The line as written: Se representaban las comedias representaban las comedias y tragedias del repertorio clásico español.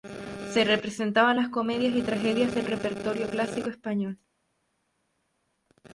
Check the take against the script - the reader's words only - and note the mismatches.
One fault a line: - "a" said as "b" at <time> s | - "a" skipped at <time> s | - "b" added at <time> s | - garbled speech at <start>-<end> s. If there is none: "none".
- "representaban las comedias" skipped at 1.9 s